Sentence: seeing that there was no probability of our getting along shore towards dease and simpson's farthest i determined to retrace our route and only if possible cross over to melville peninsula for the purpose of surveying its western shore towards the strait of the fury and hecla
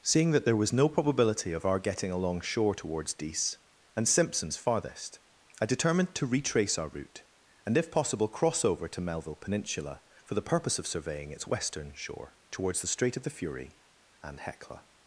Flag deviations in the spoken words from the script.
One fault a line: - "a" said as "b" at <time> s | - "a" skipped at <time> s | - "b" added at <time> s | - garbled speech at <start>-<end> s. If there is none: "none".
- "only" skipped at 7.8 s